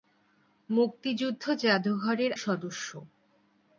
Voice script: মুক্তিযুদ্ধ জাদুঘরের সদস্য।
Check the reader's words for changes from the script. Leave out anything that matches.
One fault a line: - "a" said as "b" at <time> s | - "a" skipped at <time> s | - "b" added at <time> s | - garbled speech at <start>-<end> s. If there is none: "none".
none